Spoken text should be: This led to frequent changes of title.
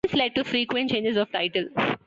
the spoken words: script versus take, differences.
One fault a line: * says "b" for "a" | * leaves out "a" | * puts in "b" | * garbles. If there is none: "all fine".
all fine